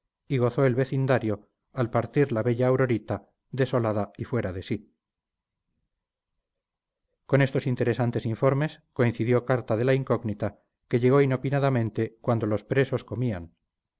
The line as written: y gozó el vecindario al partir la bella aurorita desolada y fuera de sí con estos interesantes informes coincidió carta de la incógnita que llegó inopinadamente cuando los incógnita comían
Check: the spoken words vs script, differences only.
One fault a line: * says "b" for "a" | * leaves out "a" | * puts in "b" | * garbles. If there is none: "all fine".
* says "presos" for "incógnita"